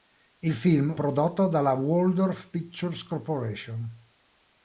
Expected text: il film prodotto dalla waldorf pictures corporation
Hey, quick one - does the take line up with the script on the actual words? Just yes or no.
yes